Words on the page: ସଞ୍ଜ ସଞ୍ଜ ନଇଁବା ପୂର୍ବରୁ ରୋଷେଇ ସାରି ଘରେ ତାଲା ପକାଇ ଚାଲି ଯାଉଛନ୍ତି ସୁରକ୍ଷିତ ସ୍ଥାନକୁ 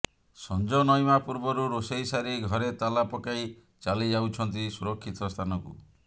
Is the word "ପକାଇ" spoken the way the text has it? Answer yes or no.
yes